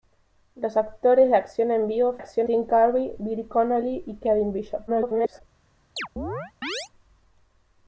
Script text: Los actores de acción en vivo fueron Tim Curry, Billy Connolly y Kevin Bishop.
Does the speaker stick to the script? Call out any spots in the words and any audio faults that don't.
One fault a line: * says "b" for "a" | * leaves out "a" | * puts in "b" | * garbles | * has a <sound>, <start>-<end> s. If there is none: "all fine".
* says "acción" for "fueron"
* garbles
* has a chirp, 6.0-6.9 s